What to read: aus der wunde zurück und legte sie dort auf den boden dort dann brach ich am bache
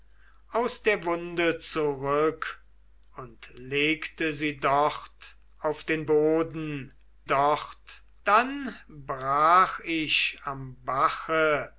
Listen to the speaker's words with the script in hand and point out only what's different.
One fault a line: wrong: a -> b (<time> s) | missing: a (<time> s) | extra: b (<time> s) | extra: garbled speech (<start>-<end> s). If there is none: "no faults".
no faults